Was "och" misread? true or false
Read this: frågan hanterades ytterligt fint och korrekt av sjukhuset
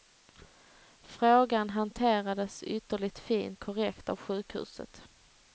true